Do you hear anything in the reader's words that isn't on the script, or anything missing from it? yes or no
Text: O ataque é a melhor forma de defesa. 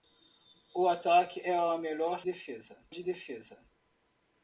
yes